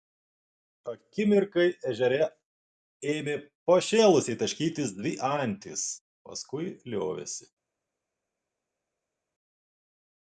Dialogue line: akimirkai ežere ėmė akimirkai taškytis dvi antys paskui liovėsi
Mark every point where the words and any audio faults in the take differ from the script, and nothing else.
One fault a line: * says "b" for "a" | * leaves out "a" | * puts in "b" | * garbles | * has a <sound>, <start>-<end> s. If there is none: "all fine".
* says "pašėlusiai" for "akimirkai"